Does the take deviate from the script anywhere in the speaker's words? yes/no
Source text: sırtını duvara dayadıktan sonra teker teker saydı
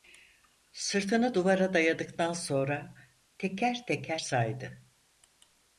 no